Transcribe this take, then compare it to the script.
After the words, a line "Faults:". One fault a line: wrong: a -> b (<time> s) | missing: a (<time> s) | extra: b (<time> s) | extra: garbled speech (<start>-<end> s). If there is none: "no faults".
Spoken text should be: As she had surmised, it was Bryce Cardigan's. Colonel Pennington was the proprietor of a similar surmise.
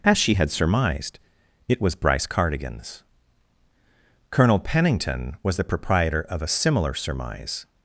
As she had surmised, it was Bryce Cardigan's. Colonel Pennington was the proprietor of a similar surmise.
Faults:
no faults